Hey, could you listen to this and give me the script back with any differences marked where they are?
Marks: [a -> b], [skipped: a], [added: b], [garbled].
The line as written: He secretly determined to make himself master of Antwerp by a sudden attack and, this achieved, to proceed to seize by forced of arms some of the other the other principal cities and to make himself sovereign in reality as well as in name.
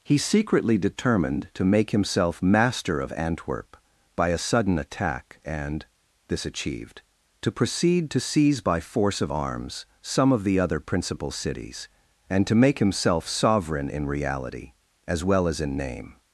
He secretly determined to make himself master of Antwerp by a sudden attack and, this achieved, to proceed to seize by [forced -> force] of arms some of the other [skipped: the other] principal cities and to make himself sovereign in reality as well as in name.